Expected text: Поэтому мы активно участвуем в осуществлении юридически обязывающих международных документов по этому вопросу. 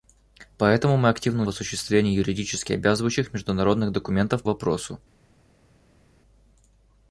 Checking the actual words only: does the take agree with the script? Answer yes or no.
no